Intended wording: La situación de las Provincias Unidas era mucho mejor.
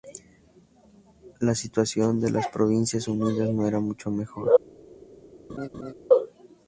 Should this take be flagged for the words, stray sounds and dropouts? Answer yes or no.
yes